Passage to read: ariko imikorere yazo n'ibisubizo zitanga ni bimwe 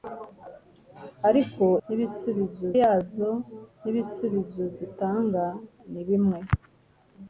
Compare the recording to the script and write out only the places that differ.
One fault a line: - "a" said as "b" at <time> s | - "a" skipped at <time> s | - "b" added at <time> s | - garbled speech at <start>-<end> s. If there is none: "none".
- "imikorere" said as "n'ibisubizo" at 1.8 s